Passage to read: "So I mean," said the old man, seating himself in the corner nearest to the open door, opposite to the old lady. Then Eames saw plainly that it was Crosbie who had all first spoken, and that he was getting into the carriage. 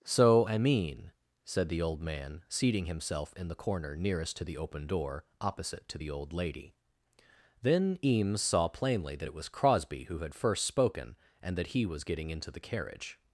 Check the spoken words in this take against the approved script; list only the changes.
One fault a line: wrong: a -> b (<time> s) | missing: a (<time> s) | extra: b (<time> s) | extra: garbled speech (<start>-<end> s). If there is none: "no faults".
missing: all (10.3 s)